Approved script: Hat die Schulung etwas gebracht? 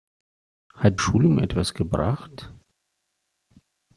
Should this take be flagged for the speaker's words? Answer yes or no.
yes